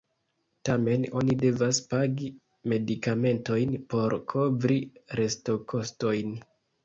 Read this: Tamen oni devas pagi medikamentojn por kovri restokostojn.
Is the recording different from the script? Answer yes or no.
no